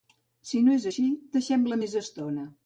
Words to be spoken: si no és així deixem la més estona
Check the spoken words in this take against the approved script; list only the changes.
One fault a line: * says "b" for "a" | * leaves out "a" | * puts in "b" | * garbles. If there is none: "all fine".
all fine